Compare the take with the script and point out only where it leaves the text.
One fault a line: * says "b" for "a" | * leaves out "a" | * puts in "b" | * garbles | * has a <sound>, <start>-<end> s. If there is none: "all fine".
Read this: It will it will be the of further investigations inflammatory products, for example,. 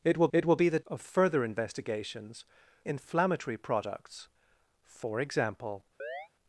* has a chirp, 6.0-6.3 s